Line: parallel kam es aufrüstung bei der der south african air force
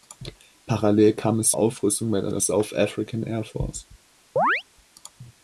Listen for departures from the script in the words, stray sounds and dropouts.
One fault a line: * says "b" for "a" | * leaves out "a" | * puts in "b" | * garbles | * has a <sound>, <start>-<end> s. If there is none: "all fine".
* has a chirp, 4.4-4.6 s